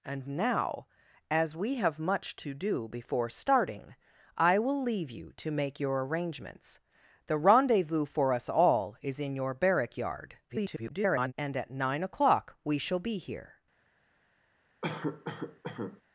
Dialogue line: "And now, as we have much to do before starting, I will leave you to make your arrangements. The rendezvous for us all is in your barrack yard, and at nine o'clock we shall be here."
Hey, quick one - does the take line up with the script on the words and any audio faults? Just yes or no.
no